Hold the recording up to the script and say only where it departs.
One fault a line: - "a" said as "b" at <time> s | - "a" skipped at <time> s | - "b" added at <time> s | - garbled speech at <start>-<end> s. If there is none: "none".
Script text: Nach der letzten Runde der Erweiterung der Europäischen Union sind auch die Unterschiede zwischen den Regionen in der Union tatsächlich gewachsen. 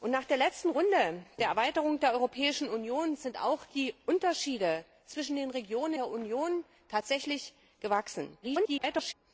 - "in" skipped at 5.9 s
- garbled speech at 8.4-9.1 s